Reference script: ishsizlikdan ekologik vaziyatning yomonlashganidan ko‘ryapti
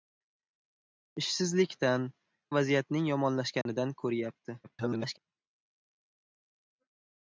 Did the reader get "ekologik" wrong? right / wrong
wrong